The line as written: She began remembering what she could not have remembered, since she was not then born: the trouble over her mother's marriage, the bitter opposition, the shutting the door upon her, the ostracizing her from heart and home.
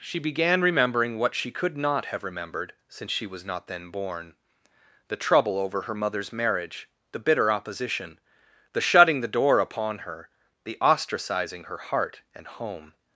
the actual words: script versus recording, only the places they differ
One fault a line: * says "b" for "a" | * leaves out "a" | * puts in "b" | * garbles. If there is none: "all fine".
* leaves out "from"